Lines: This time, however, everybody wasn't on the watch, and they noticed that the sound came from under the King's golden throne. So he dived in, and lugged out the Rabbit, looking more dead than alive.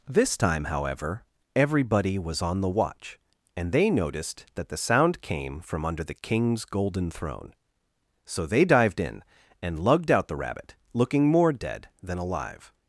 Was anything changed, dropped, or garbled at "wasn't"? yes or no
yes